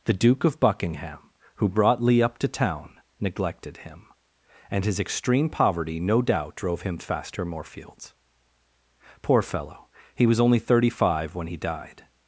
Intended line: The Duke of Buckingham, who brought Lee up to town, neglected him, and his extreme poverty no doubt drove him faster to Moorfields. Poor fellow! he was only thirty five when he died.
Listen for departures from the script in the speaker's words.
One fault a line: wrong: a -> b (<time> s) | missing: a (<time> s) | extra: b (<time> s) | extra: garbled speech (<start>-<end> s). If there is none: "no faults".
missing: to (7.5 s)